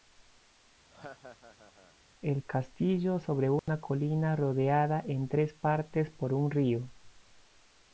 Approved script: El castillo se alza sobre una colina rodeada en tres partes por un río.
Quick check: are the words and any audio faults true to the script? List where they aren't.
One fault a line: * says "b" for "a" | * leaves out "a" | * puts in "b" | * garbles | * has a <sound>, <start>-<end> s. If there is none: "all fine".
* has a laugh, 0.9-2.0 s
* leaves out "se alza"
* has a dropout, 3.6-3.7 s